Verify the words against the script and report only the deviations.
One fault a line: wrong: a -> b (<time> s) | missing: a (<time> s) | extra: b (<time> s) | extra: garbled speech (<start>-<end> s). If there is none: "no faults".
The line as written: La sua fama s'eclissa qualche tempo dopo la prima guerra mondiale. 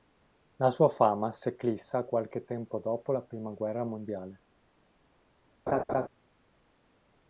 no faults